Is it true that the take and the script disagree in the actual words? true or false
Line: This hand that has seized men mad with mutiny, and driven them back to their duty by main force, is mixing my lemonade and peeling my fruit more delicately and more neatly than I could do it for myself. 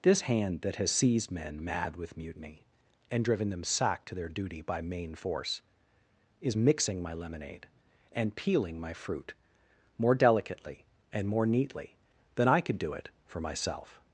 true